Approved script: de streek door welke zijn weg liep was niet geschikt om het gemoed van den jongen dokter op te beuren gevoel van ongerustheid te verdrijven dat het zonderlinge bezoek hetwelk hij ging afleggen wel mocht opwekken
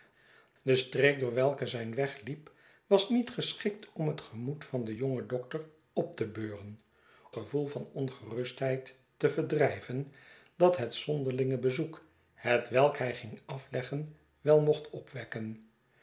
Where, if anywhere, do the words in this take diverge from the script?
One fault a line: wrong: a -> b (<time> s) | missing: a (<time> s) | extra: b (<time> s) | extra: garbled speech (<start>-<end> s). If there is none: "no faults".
no faults